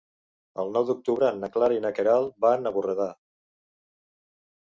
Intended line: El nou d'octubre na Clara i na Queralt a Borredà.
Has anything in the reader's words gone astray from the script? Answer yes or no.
yes